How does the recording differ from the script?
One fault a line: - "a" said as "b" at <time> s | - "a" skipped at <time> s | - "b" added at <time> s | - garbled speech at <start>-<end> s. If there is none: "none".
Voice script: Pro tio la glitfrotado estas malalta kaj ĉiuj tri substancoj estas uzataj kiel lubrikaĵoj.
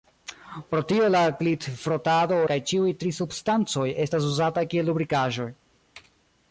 - "estas malalta" skipped at 2.4 s